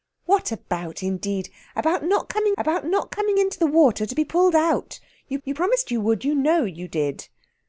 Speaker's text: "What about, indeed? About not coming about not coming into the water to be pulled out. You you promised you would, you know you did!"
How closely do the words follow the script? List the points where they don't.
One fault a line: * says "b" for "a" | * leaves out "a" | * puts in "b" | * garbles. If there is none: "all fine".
all fine